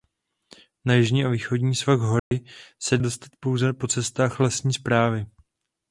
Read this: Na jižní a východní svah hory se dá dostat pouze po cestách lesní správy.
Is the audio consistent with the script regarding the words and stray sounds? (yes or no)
no